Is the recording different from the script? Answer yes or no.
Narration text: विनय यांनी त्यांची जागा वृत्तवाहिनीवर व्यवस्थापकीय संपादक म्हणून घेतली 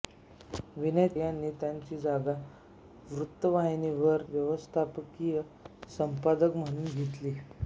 no